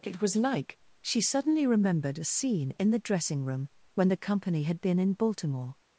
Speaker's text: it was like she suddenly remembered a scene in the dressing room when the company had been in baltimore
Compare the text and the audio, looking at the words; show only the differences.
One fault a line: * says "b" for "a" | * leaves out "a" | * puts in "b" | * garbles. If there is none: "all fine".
all fine